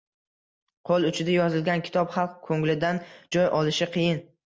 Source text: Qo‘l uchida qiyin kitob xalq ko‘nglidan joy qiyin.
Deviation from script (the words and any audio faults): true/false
true